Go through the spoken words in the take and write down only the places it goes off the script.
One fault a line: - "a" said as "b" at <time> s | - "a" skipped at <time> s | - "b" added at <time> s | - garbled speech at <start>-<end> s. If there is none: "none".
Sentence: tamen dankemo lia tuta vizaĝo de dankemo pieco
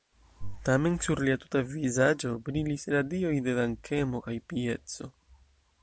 - "dankemo" said as "sur" at 1.1 s
- "brilis radioj" added at 2.5 s
- "kaj" added at 4.3 s